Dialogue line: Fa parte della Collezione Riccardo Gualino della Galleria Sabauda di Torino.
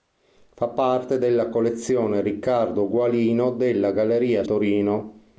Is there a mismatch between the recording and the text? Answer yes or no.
yes